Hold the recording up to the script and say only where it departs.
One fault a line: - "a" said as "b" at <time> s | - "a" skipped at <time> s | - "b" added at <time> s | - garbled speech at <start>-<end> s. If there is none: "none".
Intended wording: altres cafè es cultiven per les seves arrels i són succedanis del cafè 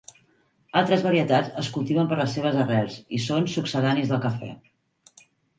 - "cafè" said as "varietats" at 1.1 s